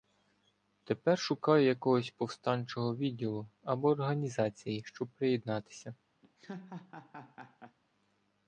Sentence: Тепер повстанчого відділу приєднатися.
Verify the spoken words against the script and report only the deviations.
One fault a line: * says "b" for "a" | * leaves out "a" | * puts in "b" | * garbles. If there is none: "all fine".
* puts in "шукаю якогось"
* puts in "або організації щоб"